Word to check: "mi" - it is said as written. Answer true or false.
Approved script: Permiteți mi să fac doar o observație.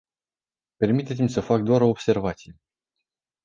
true